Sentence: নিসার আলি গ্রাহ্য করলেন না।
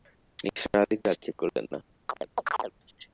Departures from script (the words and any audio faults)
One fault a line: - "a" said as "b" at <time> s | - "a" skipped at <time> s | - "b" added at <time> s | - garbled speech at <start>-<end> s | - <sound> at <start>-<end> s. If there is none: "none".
- chirp at 2.1-2.7 s